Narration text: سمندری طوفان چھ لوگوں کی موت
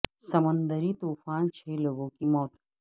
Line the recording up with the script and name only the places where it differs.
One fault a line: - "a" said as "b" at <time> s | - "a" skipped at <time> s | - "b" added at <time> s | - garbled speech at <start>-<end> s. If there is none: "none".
none